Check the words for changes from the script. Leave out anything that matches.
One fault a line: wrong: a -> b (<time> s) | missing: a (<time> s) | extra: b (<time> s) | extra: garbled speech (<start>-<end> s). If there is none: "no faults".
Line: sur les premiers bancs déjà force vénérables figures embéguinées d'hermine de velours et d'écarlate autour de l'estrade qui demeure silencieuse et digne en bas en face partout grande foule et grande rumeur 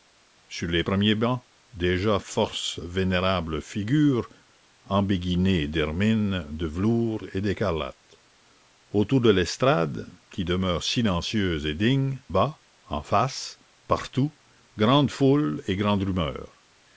missing: en (12.2 s)